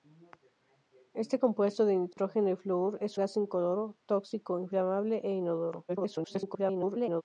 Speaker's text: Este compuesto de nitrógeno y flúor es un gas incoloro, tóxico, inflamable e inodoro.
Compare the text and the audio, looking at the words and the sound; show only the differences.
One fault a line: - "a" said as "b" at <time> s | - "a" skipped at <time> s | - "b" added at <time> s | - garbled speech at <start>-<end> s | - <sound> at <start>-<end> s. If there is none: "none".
- dropout at 2.1-2.2 s
- "un" skipped at 3.2 s
- garbled speech at 5.9-7.2 s